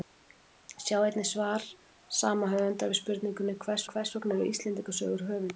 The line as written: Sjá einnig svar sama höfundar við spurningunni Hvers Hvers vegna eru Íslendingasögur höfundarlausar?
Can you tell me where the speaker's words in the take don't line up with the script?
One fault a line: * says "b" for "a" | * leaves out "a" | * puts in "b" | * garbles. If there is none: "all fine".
all fine